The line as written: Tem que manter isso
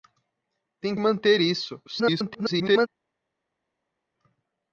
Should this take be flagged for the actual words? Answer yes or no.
yes